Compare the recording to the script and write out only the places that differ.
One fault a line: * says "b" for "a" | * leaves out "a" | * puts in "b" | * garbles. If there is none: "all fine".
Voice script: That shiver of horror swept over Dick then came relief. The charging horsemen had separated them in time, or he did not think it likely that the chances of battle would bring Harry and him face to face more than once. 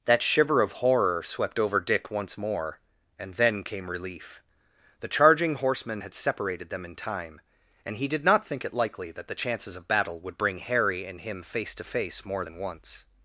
* puts in "once more and"
* says "and" for "or"